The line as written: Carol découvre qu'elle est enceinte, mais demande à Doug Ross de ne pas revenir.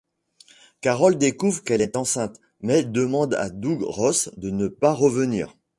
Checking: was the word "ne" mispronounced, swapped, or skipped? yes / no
no